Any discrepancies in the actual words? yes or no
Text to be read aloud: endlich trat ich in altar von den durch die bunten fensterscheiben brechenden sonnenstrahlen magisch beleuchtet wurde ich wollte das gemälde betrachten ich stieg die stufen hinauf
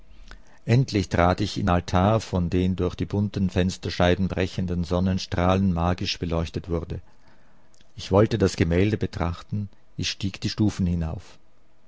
no